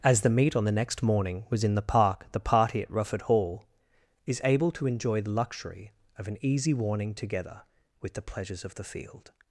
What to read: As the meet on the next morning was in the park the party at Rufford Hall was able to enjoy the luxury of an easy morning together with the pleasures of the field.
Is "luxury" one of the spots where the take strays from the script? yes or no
no